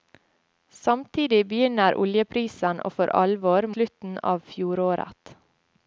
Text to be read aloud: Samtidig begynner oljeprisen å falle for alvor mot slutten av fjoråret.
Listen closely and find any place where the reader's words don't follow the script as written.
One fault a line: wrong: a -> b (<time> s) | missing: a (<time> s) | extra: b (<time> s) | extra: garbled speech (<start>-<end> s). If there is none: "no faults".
missing: falle (2.9 s)
missing: mot (3.7 s)